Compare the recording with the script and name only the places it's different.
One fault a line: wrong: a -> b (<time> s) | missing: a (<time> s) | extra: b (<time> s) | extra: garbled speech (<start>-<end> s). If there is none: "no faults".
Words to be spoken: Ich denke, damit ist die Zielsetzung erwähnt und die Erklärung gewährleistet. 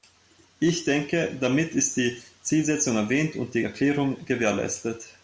no faults